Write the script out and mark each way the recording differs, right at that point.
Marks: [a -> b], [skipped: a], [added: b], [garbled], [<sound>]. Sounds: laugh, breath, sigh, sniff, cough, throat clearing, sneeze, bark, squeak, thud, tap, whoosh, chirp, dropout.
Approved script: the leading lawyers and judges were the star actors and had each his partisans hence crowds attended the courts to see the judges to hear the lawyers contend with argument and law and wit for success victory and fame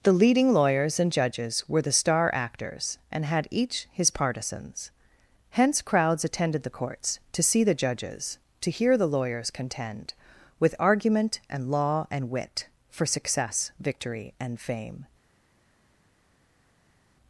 the leading lawyers and judges were the star actors and had each his partisans hence crowds attended the courts to see the judges to hear the lawyers contend with argument and law and wit for success victory and fame